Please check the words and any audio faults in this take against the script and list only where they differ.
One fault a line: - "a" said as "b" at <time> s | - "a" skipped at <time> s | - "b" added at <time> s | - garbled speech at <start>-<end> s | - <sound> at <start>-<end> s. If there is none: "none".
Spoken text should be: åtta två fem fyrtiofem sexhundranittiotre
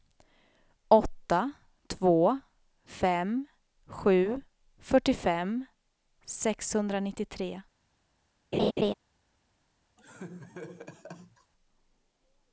- "sju" added at 3.8 s
- laugh at 8.5-8.9 s
- laugh at 10.0-11.5 s